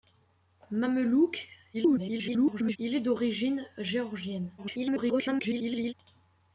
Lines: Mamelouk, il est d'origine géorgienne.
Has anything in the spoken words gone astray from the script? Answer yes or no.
yes